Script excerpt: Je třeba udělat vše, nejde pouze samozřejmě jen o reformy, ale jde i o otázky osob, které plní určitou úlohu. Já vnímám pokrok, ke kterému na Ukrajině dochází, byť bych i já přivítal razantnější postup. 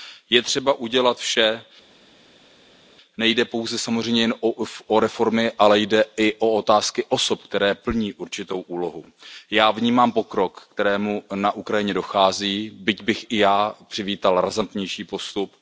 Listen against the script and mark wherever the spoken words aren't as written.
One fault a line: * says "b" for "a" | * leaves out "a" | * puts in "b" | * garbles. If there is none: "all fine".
all fine